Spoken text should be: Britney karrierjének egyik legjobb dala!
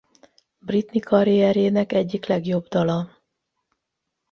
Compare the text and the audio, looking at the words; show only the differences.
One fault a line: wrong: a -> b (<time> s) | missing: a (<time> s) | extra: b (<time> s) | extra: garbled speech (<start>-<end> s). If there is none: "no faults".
no faults